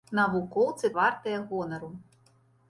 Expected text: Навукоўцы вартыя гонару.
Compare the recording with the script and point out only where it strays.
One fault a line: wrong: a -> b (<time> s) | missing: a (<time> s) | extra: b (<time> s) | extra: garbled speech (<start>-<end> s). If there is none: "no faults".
no faults